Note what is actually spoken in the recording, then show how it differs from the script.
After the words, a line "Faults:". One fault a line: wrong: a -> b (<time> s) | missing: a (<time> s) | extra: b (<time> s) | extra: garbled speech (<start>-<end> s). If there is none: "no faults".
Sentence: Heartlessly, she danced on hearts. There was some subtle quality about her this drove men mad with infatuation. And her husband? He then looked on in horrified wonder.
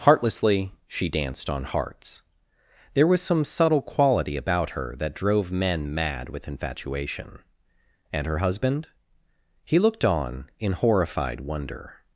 Heartlessly, she danced on hearts. There was some subtle quality about her that drove men mad with infatuation. And her husband? He looked on in horrified wonder.
Faults:
wrong: this -> that (5.0 s)
missing: then (9.8 s)